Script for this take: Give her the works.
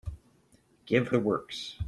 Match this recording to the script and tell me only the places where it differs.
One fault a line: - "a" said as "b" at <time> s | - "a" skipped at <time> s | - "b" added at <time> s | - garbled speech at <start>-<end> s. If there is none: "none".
- "her" skipped at 1.1 s